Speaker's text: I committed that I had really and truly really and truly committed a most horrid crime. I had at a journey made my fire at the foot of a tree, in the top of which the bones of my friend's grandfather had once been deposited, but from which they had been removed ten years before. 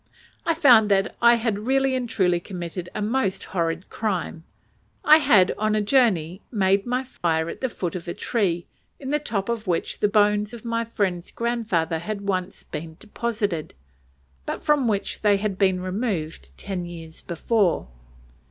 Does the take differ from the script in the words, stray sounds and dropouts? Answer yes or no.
yes